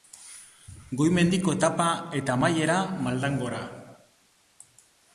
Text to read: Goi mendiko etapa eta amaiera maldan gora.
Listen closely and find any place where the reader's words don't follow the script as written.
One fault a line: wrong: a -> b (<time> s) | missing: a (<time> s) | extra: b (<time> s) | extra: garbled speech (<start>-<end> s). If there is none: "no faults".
no faults